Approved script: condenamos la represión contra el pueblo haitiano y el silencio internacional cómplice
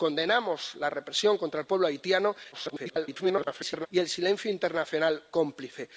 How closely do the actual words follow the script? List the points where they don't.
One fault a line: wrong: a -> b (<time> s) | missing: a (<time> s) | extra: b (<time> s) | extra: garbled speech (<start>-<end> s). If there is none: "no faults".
extra: garbled speech (2.5-3.9 s)